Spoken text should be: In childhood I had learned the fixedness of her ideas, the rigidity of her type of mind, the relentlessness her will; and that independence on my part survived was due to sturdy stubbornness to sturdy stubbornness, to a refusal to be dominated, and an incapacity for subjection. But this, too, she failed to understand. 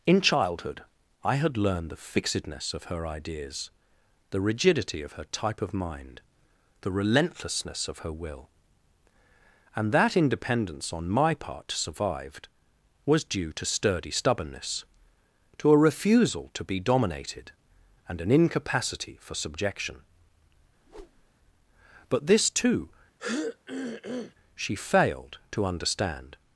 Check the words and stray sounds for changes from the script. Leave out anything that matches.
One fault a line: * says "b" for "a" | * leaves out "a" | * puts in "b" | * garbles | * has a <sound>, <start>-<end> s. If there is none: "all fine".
* puts in "of"
* leaves out "sturdy stubbornness to"
* has a whoosh, 20.8-21.3 s
* has a throat clearing, 23.2-24.3 s